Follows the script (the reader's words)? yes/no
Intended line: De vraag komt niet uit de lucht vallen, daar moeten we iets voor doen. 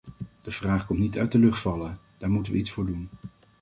yes